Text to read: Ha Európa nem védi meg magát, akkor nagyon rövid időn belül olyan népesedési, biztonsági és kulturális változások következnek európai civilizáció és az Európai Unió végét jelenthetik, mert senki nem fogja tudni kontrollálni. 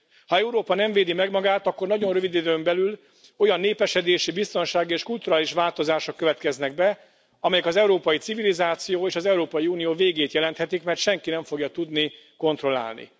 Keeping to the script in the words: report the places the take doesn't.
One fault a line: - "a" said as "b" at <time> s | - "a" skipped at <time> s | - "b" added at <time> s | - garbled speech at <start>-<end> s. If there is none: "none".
- "be amelyek az" added at 6.7 s